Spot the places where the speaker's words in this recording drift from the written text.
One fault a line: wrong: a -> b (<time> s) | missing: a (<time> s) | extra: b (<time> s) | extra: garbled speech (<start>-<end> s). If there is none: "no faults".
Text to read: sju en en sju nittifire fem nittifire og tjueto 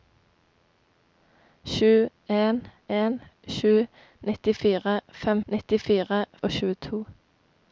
no faults